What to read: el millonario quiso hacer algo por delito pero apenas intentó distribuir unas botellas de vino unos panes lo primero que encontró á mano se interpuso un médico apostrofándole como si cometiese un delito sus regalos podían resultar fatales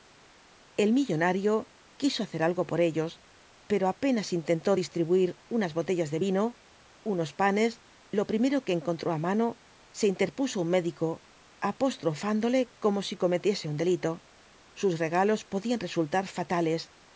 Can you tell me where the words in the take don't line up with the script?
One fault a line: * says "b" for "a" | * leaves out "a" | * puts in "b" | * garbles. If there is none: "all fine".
* says "ellos" for "delito"